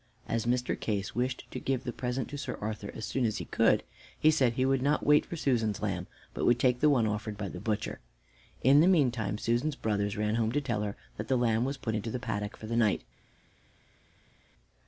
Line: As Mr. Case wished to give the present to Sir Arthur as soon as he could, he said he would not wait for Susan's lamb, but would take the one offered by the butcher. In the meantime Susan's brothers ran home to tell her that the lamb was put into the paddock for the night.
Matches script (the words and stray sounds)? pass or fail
pass